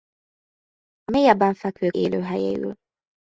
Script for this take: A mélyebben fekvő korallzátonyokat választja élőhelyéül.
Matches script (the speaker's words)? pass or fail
fail